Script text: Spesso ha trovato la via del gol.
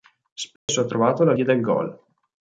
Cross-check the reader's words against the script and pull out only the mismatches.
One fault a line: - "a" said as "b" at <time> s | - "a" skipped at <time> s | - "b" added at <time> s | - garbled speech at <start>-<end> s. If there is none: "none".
none